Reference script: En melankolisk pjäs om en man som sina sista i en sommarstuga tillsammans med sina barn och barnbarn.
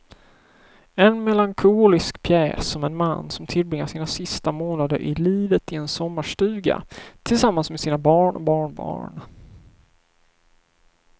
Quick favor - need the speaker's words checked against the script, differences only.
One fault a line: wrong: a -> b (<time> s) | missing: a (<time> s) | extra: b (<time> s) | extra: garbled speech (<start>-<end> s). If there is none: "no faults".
extra: tillbringar (3.5 s)
extra: månader i livet (4.5 s)